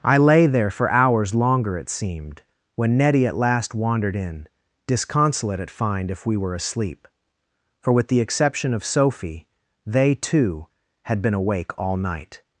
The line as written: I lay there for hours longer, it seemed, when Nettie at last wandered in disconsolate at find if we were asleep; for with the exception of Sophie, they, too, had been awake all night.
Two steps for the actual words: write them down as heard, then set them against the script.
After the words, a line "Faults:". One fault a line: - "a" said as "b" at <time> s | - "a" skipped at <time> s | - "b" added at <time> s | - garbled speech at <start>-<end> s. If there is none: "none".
I lay there for hours longer, it seemed, when Nettie at last wandered in disconsolate at find if we were asleep; for with the exception of Sophie, they, too, had been awake all night.
Faults:
none